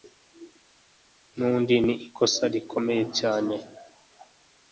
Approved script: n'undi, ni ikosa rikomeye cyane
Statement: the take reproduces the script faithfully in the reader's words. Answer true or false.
true